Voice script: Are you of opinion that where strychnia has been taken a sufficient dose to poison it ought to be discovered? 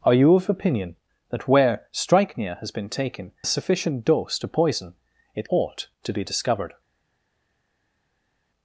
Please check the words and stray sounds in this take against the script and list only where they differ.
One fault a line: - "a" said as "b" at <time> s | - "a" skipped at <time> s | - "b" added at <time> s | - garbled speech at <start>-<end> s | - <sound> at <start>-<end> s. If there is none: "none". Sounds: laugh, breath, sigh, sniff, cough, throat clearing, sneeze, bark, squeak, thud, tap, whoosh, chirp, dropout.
none